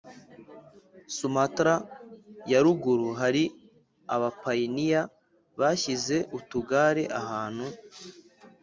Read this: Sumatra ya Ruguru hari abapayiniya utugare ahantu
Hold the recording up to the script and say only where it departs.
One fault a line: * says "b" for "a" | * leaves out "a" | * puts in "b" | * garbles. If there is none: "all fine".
* puts in "bashyize"